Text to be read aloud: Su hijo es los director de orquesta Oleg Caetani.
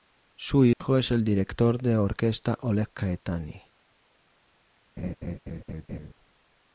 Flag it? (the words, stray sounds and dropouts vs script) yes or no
yes